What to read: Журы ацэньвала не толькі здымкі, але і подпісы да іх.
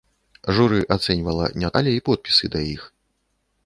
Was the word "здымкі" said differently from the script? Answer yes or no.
yes